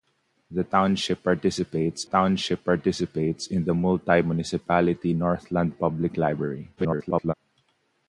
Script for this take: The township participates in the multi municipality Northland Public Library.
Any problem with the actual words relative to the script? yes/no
yes